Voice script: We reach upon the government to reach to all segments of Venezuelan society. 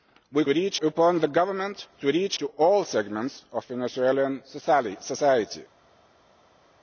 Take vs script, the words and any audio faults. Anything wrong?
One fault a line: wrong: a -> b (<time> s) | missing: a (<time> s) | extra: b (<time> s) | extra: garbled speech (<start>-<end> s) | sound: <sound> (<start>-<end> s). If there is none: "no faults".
no faults